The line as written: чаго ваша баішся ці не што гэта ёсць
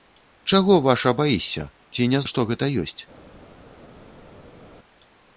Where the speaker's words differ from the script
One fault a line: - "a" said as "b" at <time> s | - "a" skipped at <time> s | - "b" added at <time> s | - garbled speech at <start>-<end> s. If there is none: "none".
none